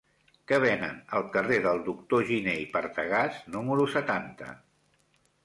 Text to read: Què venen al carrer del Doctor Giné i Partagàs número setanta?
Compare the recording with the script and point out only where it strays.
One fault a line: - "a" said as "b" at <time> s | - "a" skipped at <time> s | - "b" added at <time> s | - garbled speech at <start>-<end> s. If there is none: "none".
none